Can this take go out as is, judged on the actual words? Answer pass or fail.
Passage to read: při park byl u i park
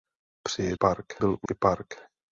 pass